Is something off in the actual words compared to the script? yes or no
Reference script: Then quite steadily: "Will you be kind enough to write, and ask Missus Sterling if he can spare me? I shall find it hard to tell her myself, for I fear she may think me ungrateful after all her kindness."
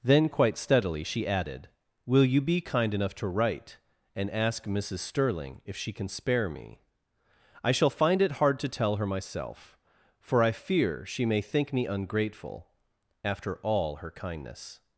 yes